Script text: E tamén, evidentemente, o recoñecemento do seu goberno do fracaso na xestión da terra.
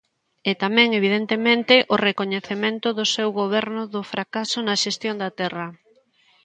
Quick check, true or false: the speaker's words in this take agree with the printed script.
true